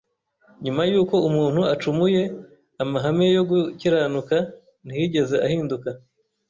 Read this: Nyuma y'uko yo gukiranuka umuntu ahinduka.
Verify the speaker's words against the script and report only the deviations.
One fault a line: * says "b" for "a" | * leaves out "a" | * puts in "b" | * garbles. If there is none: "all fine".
* puts in "umuntu acumuye amahame"
* says "ntiyigeze" for "umuntu"